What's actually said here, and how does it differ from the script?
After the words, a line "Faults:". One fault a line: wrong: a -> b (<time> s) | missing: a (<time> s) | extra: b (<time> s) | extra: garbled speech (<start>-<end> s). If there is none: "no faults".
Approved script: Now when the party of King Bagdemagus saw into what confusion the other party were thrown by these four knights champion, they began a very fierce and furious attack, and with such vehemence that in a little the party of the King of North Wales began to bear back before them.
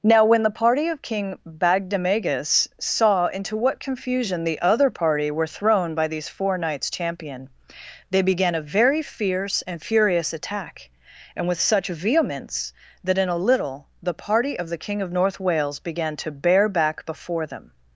Now when the party of King Bagdemagus saw into what confusion the other party were thrown by these four knights champion, they began a very fierce and furious attack, and with such vehemence that in a little the party of the King of North Wales began to bear back before them.
Faults:
no faults